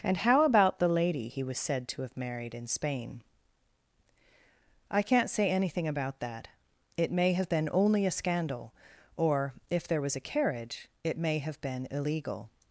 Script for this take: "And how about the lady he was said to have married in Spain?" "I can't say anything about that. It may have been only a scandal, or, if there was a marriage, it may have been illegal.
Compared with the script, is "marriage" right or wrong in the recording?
wrong